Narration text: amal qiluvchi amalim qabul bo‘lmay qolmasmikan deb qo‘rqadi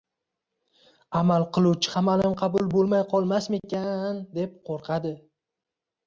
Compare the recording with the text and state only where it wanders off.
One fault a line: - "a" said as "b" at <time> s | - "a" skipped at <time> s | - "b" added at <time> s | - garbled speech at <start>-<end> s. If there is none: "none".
none